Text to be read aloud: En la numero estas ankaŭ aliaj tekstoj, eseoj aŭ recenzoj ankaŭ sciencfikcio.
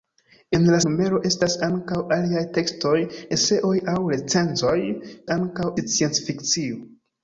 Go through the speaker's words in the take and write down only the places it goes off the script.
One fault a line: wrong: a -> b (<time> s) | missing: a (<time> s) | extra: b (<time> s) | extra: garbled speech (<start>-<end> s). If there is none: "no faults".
no faults